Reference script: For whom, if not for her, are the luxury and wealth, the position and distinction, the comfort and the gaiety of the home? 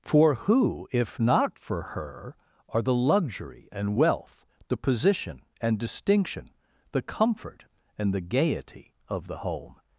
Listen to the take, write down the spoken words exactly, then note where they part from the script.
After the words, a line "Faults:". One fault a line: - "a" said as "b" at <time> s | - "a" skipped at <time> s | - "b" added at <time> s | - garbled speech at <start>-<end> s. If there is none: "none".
For who, if not for her, are the luxury and wealth, the position and distinction, the comfort and the gaiety of the home?
Faults:
- "whom" said as "who" at 0.3 s